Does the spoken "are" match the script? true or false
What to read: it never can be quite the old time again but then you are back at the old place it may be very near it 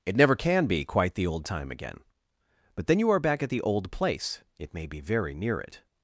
true